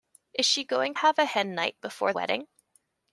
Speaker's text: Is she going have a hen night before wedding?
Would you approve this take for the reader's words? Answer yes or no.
yes